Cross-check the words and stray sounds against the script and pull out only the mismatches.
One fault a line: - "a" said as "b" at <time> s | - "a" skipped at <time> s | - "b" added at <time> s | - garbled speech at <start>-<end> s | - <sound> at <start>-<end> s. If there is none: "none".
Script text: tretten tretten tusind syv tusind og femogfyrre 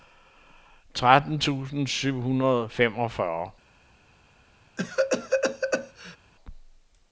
- "tretten" skipped at 1.4 s
- "tusind" said as "hundrede" at 2.2 s
- cough at 4.8-6.2 s